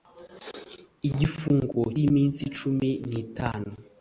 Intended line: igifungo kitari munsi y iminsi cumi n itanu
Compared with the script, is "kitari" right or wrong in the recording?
wrong